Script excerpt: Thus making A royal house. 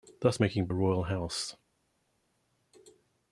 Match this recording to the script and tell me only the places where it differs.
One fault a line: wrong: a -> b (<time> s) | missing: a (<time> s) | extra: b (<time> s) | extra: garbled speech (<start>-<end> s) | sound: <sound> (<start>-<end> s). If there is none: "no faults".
no faults